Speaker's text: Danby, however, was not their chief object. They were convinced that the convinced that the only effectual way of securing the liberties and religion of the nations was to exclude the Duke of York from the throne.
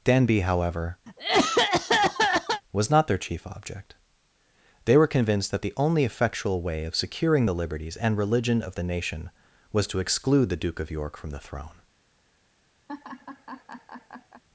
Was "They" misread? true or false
false